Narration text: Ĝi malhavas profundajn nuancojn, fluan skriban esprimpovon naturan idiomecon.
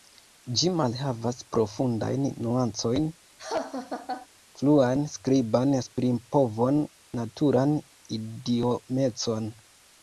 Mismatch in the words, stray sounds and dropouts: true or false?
true